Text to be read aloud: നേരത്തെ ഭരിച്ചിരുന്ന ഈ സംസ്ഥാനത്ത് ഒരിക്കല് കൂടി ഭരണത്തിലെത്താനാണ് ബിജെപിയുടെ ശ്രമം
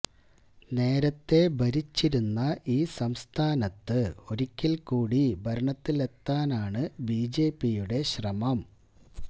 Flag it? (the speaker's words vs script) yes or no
no